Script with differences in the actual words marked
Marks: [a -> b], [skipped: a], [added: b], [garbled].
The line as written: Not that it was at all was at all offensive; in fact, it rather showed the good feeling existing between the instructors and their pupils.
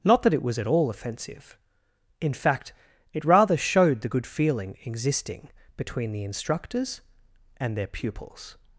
Not that it was at all [skipped: was at all] offensive; in fact, it rather showed the good feeling existing between the instructors and their pupils.